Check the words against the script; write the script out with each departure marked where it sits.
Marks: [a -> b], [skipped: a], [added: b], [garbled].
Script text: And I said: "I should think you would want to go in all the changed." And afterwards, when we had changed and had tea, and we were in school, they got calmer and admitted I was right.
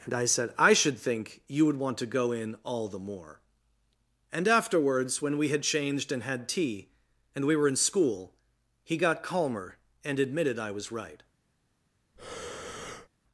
And I said: "I should think you would want to go in all the [changed." -> more] And afterwards, when we had changed and had tea, and we were in school, [they -> he] got calmer and admitted I was right.